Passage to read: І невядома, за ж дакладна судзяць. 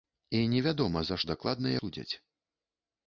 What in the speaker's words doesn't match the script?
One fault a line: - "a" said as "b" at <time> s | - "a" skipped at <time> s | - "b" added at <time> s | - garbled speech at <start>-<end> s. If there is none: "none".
none